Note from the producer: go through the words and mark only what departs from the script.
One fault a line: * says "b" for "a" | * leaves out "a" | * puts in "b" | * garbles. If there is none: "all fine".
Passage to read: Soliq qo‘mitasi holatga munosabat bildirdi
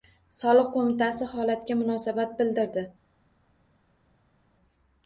all fine